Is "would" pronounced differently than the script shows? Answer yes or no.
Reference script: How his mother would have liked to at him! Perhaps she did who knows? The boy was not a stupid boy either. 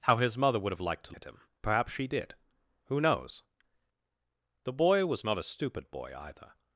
no